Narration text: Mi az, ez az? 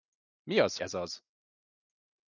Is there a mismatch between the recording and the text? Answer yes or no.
no